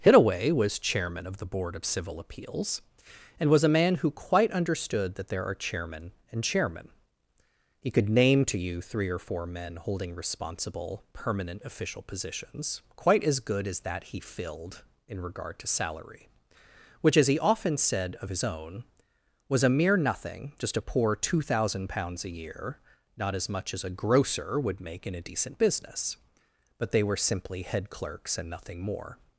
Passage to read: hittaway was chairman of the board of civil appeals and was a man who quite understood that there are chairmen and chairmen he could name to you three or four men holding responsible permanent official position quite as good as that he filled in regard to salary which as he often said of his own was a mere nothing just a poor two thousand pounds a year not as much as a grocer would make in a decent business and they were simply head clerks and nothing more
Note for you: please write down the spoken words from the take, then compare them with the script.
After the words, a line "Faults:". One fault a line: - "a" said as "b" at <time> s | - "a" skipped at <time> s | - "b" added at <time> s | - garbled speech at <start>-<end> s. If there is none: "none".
hittaway was chairman of the board of civil appeals and was a man who quite understood that there are chairmen and chairmen he could name to you three or four men holding responsible permanent official positions quite as good as that he filled in regard to salary which as he often said of his own was a mere nothing just a poor two thousand pounds a year not as much as a grocer would make in a decent business but they were simply head clerks and nothing more
Faults:
- "position" said as "positions" at 12.0 s
- "and" said as "but" at 26.8 s